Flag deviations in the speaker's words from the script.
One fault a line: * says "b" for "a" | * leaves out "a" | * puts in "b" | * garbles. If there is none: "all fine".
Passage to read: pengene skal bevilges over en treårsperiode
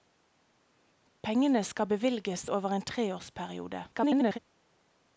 * garbles